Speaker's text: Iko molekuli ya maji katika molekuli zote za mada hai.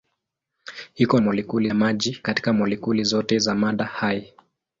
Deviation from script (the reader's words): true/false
false